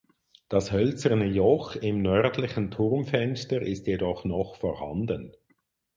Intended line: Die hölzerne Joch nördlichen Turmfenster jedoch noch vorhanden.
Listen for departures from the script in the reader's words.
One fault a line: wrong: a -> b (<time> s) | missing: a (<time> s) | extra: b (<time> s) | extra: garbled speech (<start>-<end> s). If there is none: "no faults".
wrong: Die -> Das (0.5 s)
extra: im (1.8 s)
extra: ist (3.6 s)